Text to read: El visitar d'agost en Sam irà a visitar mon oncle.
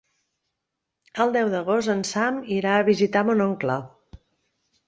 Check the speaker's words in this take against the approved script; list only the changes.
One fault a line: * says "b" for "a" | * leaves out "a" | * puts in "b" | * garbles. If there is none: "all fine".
* says "deu" for "visitar"